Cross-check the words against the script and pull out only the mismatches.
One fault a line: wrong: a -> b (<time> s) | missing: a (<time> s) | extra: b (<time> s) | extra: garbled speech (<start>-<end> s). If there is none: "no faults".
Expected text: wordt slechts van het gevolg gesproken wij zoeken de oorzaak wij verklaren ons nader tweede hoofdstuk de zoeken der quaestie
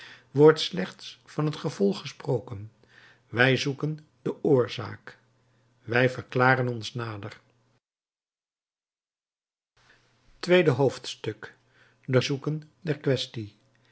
no faults